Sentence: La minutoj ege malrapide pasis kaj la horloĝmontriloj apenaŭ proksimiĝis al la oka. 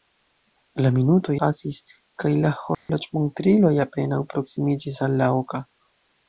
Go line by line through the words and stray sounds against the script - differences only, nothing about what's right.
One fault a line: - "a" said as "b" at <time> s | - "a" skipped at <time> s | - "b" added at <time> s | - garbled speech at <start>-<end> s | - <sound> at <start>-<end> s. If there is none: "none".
- "ege malrapide" skipped at 1.4 s
- dropout at 2.7-2.9 s